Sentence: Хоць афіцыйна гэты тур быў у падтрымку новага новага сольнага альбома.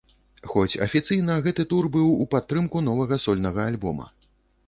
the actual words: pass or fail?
fail